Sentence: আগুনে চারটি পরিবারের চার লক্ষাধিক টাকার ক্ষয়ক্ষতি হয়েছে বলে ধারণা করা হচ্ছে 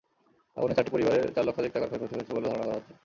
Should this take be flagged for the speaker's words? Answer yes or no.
no